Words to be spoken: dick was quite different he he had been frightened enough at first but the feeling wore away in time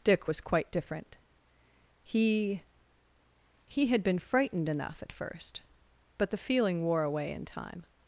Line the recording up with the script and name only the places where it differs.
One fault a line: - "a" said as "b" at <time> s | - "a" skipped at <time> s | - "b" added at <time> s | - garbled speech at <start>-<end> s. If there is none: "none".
none